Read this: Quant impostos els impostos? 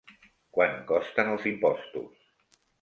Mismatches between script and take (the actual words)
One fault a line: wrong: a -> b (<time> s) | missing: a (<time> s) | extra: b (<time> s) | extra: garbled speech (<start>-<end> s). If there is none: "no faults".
wrong: impostos -> costen (0.9 s)